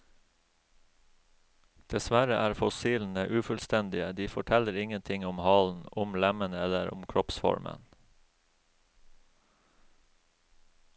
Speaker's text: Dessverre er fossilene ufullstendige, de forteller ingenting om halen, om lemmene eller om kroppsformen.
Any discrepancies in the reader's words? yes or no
no